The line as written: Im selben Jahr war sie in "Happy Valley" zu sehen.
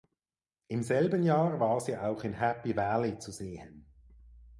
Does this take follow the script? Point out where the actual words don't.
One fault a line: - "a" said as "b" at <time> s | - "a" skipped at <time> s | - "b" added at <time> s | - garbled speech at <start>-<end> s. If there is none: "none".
- "auch" added at 1.9 s